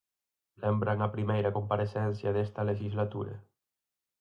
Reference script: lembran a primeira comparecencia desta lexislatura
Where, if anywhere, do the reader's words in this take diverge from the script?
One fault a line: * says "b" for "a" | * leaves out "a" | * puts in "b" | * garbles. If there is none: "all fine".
all fine